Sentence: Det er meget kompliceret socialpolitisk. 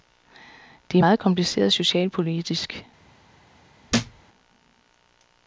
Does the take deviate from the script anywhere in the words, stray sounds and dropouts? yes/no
yes